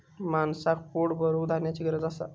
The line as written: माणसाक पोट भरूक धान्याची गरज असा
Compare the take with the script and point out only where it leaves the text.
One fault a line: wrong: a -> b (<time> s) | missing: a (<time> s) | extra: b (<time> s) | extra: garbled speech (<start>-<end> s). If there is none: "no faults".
no faults